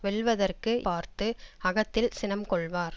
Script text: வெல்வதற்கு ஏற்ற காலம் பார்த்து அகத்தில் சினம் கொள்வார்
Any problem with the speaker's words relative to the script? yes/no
yes